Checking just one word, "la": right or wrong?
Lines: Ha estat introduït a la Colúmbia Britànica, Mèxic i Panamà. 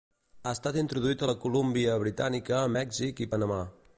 right